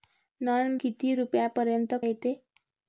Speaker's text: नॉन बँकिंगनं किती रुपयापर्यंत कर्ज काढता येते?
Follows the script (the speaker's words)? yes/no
no